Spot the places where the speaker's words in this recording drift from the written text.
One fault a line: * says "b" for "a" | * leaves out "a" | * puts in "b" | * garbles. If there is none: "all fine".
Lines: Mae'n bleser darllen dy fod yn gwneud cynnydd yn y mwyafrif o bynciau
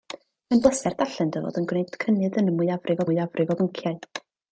* puts in "mwyafrif"